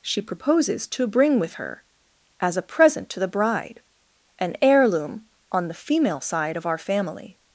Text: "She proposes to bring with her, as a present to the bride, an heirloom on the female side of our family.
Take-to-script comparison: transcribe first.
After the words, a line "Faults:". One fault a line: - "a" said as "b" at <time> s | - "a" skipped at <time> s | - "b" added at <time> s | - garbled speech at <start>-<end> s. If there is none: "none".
"She proposes to bring with her, as a present to the bride, an heirloom on the female side of our family.
Faults:
none